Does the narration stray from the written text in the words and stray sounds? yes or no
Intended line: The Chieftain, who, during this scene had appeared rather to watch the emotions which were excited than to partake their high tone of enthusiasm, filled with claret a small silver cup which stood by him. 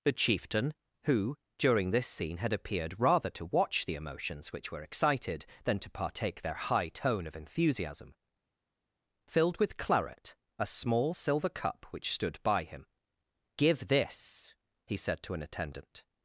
yes